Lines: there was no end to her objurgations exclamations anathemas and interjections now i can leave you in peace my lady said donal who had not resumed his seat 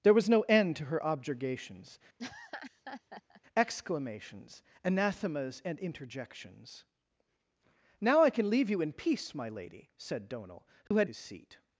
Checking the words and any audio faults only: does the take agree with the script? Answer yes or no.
no